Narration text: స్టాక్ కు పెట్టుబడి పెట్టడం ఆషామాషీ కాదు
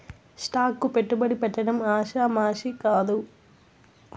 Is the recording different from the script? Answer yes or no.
no